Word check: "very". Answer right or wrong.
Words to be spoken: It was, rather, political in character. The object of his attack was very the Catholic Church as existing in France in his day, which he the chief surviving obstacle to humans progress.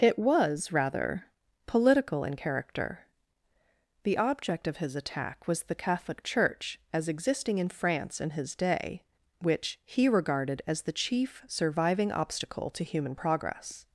wrong